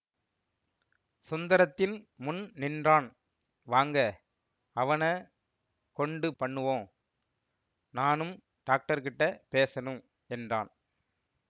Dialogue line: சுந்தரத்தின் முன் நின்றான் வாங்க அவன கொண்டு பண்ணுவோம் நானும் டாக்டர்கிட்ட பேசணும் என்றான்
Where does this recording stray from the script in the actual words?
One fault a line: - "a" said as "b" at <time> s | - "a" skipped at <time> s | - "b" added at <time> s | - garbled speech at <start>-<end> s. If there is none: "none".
none